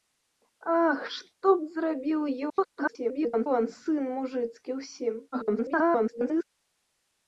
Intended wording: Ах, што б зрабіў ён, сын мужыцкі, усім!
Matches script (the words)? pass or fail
fail